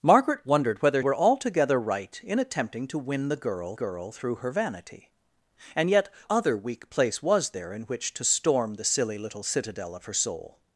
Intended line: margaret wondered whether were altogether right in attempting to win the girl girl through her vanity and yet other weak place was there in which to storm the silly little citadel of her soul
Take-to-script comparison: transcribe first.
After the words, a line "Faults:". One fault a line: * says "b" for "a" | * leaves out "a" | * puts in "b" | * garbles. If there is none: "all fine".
margaret wondered whether were altogether right in attempting to win the girl girl through her vanity and yet other weak place was there in which to storm the silly little citadel of her soul
Faults:
all fine